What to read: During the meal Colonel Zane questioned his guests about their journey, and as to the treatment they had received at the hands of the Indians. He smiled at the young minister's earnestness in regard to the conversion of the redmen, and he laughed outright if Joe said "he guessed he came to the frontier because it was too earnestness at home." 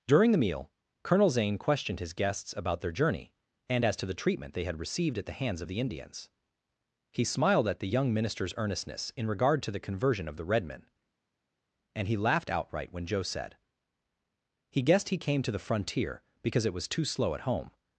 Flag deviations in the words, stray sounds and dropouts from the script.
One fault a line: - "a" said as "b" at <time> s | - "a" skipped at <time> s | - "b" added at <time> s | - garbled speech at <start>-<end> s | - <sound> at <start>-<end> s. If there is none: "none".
- "if" said as "when" at 12.9 s
- "earnestness" said as "slow" at 17.0 s